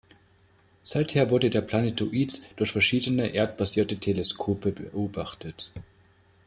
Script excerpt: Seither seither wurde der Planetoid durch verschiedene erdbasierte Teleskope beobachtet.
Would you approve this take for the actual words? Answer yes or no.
no